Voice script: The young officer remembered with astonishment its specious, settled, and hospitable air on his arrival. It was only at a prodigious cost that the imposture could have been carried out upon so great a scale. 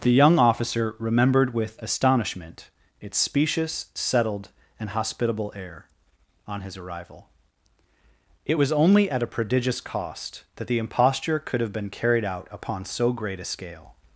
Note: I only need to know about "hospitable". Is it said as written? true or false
true